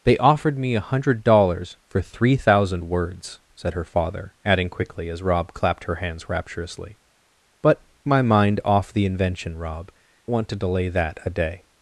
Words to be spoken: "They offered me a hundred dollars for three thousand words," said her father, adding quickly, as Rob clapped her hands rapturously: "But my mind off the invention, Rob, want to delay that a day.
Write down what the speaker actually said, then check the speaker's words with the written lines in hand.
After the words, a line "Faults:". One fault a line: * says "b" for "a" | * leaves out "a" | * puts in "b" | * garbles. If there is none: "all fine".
"They offered me a hundred dollars for three thousand words," said her father, adding quickly, as Rob clapped her hands rapturously: "But my mind off the invention, Rob, want to delay that a day.
Faults:
all fine